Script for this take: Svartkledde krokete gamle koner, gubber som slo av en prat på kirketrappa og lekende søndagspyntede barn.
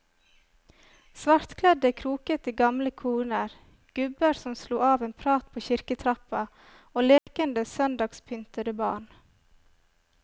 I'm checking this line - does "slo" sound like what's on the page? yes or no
yes